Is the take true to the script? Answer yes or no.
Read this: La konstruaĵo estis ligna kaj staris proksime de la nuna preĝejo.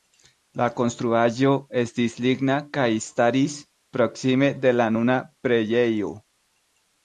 yes